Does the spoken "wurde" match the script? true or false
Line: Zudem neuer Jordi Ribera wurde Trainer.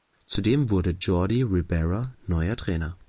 false